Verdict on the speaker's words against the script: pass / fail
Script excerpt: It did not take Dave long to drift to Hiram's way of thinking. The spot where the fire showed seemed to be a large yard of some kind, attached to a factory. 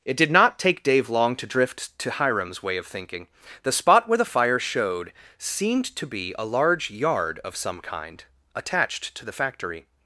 fail